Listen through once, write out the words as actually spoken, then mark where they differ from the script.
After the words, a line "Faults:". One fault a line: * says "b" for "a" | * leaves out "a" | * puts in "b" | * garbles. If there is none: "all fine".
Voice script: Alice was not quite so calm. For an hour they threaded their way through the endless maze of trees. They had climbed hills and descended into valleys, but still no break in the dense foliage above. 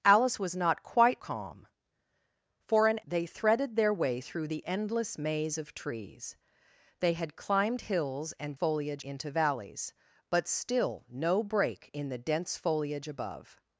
Alice was not quite calm. For an they threaded their way through the endless maze of trees. They had climbed hills and foliage into valleys, but still no break in the dense foliage above.
Faults:
* leaves out "so"
* leaves out "hour"
* says "foliage" for "descended"